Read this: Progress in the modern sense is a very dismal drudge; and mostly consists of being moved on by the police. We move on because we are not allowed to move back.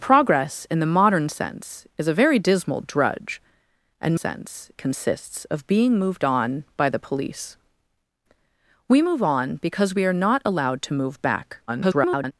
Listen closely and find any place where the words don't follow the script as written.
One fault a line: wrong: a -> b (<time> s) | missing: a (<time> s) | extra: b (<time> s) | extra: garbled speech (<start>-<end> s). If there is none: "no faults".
wrong: mostly -> sense (4.1 s)
extra: garbled speech (11.7-12.3 s)